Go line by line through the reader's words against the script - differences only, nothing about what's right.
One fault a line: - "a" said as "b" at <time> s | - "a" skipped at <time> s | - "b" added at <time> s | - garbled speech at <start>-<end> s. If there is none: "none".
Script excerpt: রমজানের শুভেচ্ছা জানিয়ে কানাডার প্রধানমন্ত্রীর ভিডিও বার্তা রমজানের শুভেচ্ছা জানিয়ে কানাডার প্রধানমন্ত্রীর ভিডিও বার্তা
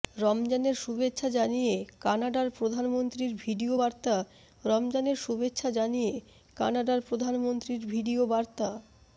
none